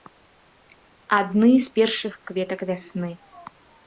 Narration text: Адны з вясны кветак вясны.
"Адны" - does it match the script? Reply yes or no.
yes